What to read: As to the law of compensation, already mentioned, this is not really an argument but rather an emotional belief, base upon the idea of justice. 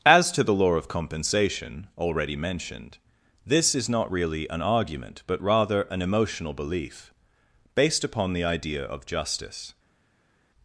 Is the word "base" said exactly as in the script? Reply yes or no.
no